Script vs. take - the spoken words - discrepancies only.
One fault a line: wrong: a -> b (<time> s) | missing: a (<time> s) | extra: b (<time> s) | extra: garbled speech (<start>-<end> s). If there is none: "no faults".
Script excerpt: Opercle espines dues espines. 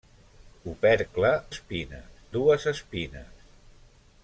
no faults